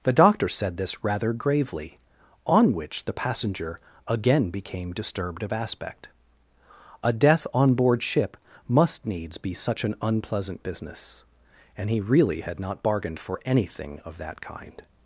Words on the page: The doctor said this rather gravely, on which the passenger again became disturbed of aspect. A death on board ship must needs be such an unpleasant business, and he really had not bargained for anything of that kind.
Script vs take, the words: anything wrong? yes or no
no